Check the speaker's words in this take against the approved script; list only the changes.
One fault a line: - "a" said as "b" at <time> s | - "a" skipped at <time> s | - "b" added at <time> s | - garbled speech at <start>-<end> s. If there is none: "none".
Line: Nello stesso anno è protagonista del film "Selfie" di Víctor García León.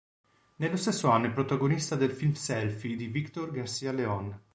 none